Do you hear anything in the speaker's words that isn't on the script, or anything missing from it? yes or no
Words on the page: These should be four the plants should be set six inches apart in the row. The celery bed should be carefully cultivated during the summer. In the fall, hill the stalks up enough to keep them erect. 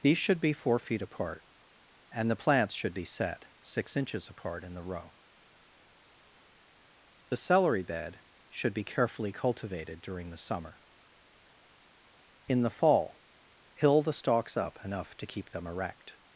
yes